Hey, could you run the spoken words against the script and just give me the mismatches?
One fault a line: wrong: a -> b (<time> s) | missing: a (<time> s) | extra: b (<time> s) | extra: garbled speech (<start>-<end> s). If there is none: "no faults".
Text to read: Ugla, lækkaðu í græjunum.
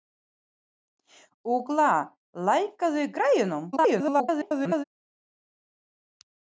extra: garbled speech (3.7-4.8 s)